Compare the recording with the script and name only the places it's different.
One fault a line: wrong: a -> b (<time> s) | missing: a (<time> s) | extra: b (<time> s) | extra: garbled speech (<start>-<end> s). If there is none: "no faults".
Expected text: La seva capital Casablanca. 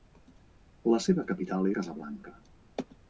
no faults